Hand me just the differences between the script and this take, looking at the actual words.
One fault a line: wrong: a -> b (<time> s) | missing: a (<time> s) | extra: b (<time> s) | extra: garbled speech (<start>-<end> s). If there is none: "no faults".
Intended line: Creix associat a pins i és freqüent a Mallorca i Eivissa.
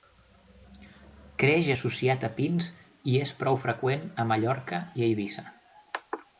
extra: prou (3.4 s)